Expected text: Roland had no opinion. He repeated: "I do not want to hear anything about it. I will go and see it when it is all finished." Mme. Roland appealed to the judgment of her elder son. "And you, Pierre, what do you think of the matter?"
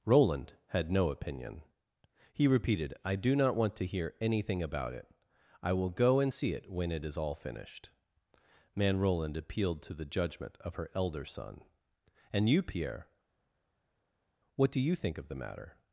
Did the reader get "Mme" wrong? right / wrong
wrong